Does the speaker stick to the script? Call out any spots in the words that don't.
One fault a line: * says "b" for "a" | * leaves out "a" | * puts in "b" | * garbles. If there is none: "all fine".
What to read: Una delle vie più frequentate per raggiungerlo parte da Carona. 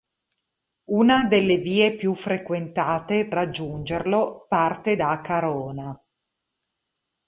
* leaves out "per"